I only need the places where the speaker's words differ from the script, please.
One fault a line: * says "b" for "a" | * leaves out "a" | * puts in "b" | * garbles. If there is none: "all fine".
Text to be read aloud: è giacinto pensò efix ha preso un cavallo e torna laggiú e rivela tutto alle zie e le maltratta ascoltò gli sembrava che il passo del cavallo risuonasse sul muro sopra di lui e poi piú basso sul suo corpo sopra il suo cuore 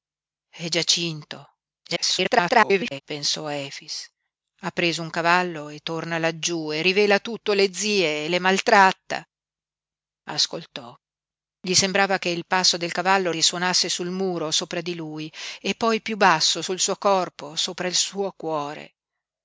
* garbles